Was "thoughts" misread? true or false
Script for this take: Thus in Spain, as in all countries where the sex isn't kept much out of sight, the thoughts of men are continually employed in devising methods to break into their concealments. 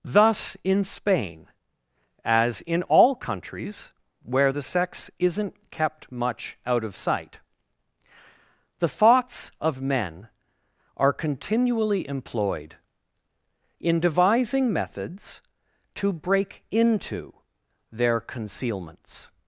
false